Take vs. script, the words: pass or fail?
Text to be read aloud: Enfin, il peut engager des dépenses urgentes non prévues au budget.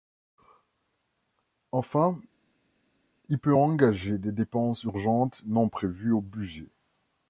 pass